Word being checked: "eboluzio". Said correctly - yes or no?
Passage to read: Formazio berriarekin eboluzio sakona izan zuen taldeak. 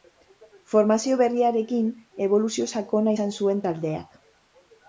yes